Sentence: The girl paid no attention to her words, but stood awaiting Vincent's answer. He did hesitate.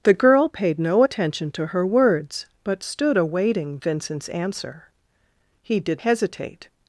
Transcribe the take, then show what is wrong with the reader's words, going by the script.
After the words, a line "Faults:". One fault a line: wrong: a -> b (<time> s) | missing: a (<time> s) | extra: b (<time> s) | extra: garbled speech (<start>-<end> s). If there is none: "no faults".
The girl paid no attention to her words, but stood awaiting Vincent's answer. He did hesitate.
Faults:
no faults